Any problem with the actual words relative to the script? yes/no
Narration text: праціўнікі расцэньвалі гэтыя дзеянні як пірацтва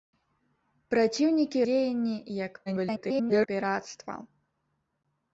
yes